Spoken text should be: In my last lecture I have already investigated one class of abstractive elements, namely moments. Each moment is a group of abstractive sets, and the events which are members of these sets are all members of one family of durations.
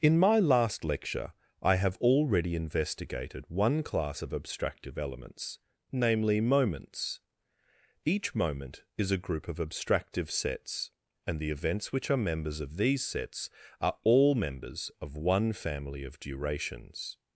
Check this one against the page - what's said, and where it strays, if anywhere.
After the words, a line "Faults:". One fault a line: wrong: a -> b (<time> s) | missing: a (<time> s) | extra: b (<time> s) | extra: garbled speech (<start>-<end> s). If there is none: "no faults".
In my last lecture I have already investigated one class of abstractive elements, namely moments. Each moment is a group of abstractive sets, and the events which are members of these sets are all members of one family of durations.
Faults:
no faults